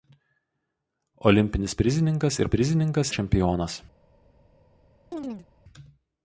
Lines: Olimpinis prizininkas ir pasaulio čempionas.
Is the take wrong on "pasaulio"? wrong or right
wrong